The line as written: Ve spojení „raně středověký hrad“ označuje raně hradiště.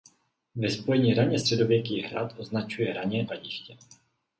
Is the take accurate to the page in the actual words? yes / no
yes